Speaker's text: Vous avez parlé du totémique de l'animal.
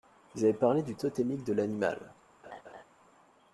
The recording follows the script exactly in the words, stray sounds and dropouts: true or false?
false